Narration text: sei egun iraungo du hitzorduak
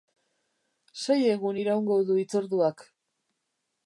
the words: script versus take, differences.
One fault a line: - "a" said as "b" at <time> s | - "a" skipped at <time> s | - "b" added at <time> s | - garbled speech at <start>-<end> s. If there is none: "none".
none